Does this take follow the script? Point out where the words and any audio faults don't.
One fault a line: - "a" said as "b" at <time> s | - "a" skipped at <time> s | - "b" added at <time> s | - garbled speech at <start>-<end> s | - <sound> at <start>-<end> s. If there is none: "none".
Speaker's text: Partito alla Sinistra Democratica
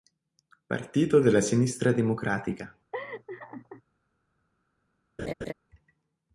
- "alla" said as "della" at 1.2 s
- laugh at 2.9-3.8 s
- laugh at 5.2-5.5 s